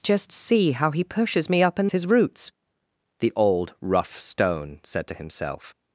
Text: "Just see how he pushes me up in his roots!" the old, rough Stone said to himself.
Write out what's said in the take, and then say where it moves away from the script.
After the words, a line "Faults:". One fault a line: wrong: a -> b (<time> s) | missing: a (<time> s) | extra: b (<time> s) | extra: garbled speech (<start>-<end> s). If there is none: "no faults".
"Just see how he pushes me up in his roots!" the old, rough Stone said to himself.
Faults:
no faults